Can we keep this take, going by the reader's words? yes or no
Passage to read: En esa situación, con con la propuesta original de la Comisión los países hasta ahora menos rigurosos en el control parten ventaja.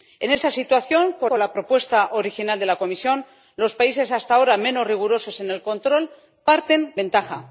yes